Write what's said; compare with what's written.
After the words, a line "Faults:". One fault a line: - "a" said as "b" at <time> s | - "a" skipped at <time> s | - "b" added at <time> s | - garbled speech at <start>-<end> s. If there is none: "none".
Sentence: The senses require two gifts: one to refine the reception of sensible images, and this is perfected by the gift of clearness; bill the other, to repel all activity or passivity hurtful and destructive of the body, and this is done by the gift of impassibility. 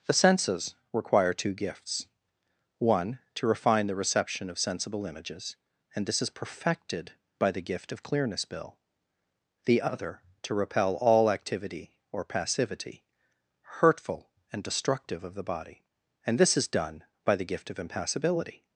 The senses require two gifts: one to refine the reception of sensible images, and this is perfected by the gift of clearness; bill the other, to repel all activity or passivity hurtful and destructive of the body, and this is done by the gift of impassibility.
Faults:
none